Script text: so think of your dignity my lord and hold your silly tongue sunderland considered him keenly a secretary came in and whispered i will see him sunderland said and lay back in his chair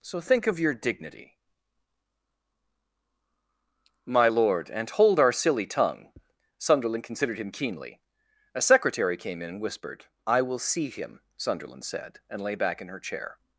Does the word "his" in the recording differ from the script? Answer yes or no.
yes